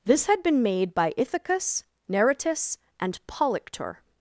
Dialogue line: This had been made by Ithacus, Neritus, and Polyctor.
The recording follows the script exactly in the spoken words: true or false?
true